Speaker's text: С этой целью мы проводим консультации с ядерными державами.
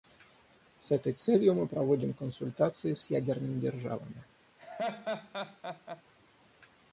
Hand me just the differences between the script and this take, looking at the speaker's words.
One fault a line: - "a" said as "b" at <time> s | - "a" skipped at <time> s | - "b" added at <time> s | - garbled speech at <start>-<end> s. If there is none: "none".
none